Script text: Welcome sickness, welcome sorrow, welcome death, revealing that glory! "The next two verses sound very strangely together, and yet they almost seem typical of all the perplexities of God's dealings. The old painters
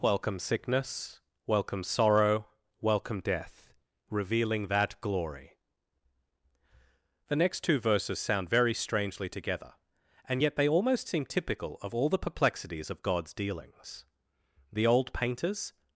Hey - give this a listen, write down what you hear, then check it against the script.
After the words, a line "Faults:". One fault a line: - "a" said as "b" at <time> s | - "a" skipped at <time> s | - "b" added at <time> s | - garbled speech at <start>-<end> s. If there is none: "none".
Welcome sickness, welcome sorrow, welcome death, revealing that glory! "The next two verses sound very strangely together, and yet they almost seem typical of all the perplexities of God's dealings. The old painters
Faults:
none